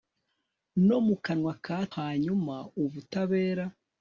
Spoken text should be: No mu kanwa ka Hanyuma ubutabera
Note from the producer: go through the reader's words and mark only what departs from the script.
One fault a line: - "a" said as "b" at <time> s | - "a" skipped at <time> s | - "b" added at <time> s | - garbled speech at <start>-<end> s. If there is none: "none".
none